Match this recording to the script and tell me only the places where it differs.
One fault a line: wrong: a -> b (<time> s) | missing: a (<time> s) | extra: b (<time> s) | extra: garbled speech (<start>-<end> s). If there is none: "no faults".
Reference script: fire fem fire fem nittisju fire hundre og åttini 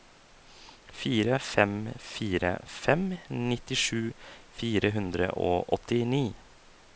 no faults